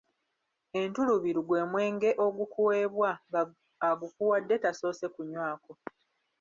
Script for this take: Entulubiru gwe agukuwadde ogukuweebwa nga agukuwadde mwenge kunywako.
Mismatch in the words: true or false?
true